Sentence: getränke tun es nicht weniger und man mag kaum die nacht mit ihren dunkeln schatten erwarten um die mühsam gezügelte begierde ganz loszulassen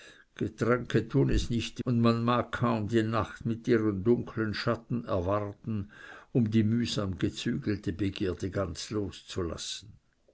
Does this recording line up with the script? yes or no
no